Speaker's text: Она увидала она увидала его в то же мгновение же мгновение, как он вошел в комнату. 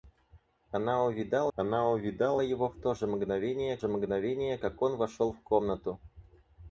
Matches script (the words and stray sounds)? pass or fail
pass